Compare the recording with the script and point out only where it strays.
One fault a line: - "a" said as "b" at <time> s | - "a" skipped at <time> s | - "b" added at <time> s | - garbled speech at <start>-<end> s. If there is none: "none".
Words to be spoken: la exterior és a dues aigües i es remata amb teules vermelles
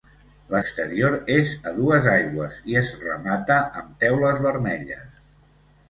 none